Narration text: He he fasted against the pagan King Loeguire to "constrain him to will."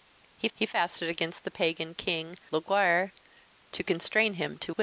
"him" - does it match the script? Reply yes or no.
yes